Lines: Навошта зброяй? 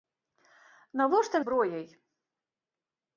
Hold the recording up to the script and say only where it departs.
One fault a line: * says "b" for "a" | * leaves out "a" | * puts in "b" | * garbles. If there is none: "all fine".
all fine